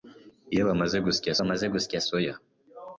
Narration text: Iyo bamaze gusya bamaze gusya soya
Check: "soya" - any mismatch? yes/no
no